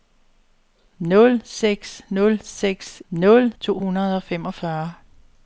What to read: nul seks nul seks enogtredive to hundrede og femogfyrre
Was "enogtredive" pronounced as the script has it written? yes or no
no